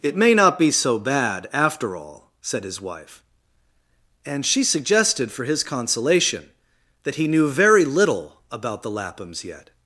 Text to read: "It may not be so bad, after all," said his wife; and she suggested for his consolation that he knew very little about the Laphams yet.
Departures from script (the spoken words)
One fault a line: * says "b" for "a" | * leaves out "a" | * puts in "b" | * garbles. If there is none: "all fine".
all fine